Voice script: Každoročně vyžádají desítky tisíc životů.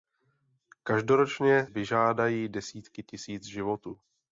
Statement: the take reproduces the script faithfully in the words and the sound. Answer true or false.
true